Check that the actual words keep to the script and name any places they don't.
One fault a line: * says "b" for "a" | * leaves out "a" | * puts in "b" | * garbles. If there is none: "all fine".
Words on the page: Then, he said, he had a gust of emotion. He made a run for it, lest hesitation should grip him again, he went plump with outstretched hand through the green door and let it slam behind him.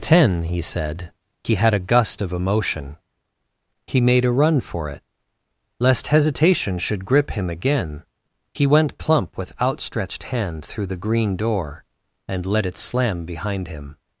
* says "Ten" for "Then"